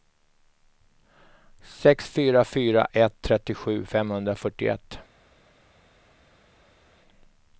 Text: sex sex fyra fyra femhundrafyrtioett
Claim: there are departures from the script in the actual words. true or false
true